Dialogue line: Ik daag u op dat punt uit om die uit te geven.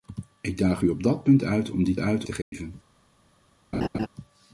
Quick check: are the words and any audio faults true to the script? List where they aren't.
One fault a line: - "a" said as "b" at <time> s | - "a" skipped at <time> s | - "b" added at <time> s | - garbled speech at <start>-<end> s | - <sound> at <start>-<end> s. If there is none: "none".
- dropout at 2.4-2.5 s
- laugh at 3.7-4.1 s